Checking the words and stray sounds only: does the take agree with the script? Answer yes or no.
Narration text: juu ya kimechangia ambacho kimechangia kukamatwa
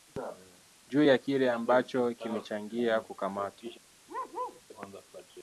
no